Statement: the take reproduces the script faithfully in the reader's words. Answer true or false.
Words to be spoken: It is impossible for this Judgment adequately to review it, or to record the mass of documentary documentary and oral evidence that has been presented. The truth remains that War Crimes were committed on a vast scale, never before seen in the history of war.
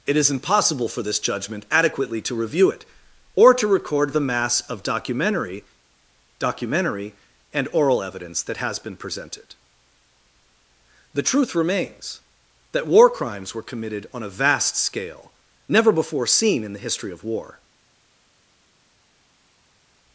true